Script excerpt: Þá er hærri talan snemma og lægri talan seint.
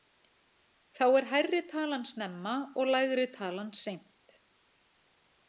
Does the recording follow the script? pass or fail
pass